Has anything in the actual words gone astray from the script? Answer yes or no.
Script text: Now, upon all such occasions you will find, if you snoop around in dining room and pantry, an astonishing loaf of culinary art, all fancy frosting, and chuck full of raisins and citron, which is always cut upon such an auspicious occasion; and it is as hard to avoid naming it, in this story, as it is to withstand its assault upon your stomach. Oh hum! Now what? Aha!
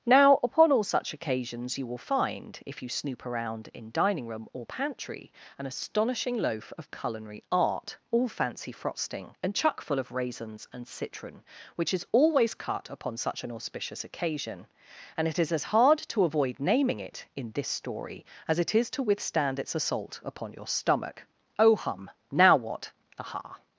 yes